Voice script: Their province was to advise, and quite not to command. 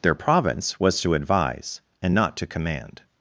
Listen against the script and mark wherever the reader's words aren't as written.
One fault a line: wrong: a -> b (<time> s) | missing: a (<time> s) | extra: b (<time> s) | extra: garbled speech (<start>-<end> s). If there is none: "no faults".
missing: quite (2.1 s)